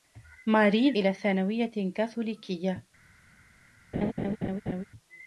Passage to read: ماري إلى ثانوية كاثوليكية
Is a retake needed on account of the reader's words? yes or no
no